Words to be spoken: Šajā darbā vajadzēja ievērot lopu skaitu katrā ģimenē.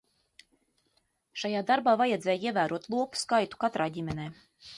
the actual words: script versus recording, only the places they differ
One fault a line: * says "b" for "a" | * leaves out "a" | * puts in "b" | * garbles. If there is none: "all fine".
all fine